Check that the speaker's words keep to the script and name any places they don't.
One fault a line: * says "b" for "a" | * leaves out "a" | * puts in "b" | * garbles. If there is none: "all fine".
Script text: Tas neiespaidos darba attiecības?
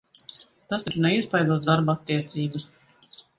* puts in "taču"